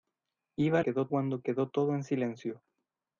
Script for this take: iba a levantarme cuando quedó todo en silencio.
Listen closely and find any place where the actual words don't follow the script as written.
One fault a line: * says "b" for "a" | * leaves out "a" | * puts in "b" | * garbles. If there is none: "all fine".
* says "quedó" for "levantarme"